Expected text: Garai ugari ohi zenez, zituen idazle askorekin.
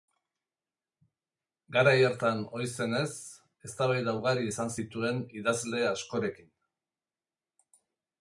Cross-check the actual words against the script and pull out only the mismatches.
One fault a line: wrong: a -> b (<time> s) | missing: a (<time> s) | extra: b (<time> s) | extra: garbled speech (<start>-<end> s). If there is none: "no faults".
wrong: ugari -> hartan (2.0 s)
extra: eztabaida ugari izan (3.7 s)